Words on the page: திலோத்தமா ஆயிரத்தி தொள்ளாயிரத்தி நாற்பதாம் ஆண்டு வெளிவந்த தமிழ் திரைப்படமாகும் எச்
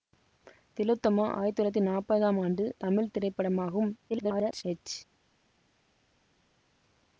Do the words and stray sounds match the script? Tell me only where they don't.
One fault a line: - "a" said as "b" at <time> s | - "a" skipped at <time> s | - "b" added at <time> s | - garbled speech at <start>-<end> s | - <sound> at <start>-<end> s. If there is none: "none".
- "வெளிவந்த" skipped at 2.6 s
- garbled speech at 4.1-4.6 s